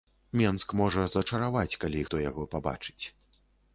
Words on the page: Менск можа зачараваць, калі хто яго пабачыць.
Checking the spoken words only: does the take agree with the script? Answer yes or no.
yes